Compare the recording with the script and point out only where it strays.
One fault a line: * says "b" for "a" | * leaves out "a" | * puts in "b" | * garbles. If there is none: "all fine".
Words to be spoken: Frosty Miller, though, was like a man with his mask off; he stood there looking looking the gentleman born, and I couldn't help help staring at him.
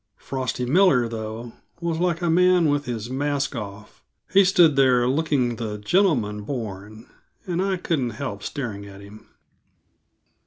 * leaves out "looking"
* leaves out "help"